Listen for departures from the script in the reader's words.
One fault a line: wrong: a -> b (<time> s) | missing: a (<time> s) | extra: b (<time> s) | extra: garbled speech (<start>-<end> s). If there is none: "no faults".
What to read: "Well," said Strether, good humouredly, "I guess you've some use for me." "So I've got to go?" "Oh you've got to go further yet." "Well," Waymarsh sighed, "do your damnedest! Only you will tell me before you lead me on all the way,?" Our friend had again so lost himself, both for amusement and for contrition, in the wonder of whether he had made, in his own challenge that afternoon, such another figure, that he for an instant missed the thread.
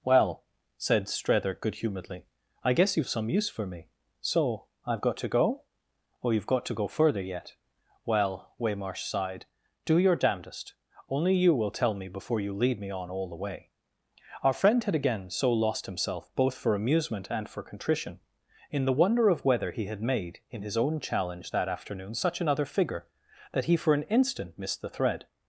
no faults